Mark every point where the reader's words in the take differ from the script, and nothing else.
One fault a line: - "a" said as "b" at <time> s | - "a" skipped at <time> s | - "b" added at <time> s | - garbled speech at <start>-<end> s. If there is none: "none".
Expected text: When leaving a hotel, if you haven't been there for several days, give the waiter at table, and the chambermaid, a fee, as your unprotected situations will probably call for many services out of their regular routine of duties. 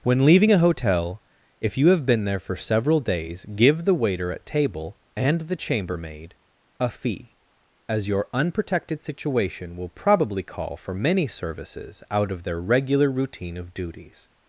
- "haven't" said as "have" at 1.9 s
- "situations" said as "situation" at 9.0 s